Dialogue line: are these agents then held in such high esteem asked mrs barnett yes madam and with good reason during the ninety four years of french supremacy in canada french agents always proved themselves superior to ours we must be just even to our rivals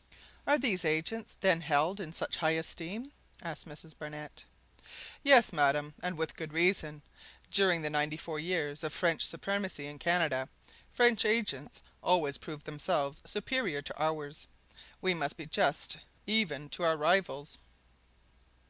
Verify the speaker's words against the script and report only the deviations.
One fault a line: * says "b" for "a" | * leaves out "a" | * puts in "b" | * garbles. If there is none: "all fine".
all fine